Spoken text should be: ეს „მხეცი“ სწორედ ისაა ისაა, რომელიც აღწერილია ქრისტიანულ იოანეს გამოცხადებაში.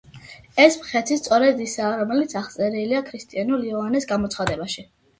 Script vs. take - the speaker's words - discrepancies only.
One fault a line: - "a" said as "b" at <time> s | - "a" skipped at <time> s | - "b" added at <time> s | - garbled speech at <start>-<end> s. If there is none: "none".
- "ისაა" skipped at 1.9 s